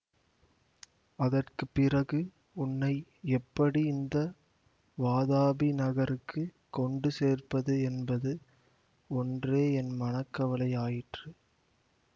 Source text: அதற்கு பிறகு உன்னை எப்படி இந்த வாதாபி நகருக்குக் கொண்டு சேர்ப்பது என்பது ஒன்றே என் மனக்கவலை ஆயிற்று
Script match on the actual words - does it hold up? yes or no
yes